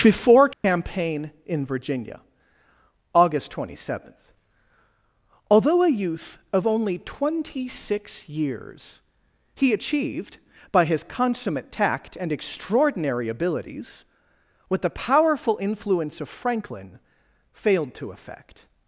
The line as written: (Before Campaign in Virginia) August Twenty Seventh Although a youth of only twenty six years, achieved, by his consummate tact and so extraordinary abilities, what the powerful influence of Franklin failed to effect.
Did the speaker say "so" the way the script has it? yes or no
no